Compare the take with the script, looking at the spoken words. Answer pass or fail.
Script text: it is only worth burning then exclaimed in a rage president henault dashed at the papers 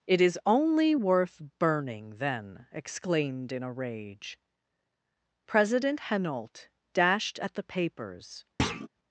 pass